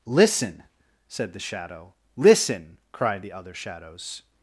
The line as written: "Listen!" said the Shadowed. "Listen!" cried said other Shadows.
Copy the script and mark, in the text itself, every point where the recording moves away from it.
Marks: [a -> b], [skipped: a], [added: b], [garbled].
"Listen!" said the [Shadowed. -> Shadow] "Listen!" cried [said -> the] other Shadows.